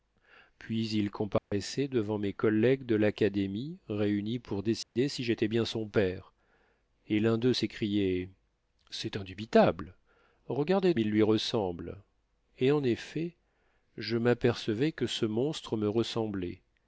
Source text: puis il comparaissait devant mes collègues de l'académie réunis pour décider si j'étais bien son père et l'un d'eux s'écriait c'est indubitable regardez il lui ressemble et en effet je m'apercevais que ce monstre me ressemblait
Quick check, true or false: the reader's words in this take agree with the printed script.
true